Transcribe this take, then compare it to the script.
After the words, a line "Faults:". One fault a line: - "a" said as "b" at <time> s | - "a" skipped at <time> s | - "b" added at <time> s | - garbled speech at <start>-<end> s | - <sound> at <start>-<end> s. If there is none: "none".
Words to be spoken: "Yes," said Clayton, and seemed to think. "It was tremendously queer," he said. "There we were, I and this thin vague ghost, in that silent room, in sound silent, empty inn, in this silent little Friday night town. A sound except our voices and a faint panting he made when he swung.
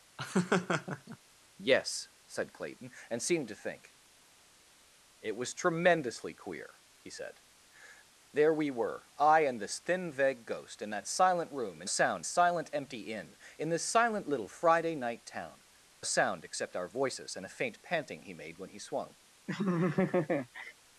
"Yes," said Clayton, and seemed to think. "It was tremendously queer," he said. "There we were, I and this thin vague ghost, in that silent room, in sound silent, empty inn, in this silent little Friday night town. A sound except our voices and a faint panting he made when he swung.
Faults:
- laugh at 0.2-1.2 s
- laugh at 19.5-20.7 s